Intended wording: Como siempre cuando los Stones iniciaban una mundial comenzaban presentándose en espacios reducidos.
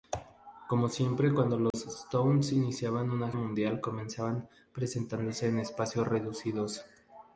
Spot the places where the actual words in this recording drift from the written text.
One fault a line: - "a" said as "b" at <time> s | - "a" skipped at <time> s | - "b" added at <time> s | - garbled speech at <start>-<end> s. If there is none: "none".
none